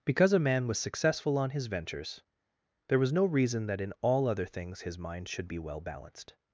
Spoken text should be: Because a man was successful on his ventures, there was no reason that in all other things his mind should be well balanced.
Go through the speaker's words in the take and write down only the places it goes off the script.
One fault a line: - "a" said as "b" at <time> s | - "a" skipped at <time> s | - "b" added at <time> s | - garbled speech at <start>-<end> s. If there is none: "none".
none